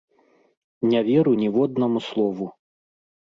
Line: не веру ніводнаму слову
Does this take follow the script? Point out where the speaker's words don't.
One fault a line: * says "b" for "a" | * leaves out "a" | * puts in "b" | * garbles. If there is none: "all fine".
all fine